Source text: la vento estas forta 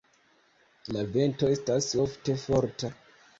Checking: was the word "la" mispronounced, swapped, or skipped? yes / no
no